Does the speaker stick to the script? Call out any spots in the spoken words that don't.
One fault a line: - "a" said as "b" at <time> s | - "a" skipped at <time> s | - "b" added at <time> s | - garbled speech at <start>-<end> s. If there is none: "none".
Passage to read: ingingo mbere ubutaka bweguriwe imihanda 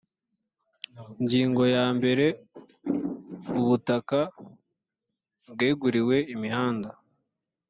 - "ya" added at 1.8 s